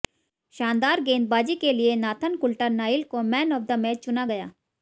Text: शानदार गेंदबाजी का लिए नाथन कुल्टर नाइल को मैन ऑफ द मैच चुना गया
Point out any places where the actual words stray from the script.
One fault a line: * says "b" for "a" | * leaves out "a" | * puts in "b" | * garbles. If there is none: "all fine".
* says "के" for "का"